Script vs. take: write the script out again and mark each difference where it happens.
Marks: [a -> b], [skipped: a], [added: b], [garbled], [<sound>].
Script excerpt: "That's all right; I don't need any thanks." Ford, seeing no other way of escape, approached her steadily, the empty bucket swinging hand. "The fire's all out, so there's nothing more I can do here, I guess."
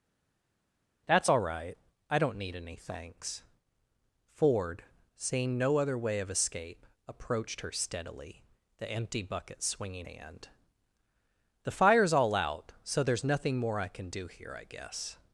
"That's all right; I don't need any thanks." Ford, seeing no other way of escape, approached her steadily, the empty bucket swinging hand. "The fire's all out, so there's nothing more I can do here, I guess."